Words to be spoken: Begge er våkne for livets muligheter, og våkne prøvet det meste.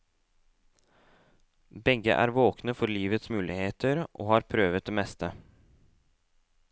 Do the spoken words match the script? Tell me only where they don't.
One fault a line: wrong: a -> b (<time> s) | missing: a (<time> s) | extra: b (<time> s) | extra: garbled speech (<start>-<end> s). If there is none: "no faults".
wrong: våkne -> har (4.3 s)